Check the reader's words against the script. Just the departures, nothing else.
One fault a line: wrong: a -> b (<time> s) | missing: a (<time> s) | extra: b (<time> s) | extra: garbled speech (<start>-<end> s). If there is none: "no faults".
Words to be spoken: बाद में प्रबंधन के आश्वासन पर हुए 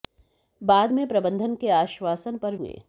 no faults